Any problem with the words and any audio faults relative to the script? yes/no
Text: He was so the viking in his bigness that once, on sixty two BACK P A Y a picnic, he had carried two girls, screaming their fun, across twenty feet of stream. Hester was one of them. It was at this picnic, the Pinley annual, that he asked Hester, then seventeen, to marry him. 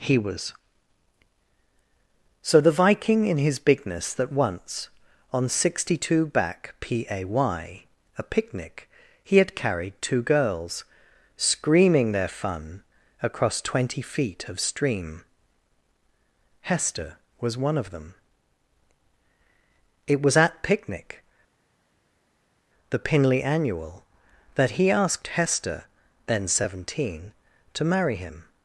yes